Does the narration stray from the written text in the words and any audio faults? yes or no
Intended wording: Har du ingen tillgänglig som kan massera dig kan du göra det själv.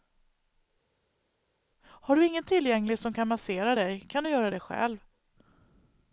no